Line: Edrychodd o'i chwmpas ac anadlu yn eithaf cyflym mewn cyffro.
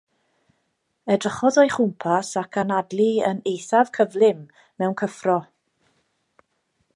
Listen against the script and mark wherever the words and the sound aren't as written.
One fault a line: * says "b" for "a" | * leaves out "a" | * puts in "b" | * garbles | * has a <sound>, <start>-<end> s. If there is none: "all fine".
all fine